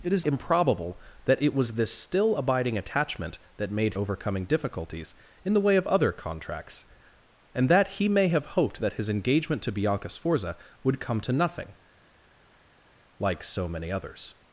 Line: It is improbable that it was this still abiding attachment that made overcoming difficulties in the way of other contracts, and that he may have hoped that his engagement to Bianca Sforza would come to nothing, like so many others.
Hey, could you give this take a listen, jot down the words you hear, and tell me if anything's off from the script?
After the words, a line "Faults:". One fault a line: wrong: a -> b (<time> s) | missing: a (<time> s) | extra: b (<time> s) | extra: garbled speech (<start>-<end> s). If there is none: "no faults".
It is improbable that it was this still abiding attachment that made overcoming difficulties in the way of other contracts, and that he may have hoped that his engagement to Bianca Sforza would come to nothing, like so many others.
Faults:
no faults